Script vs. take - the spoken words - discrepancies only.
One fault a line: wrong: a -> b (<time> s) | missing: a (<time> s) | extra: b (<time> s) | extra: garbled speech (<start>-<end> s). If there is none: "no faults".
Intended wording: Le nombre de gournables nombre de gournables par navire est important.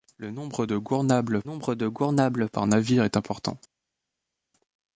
no faults